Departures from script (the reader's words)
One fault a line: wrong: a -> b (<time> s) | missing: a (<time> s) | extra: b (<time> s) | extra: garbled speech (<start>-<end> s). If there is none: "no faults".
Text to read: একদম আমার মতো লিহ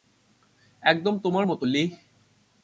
wrong: আমার -> তোমার (1.2 s)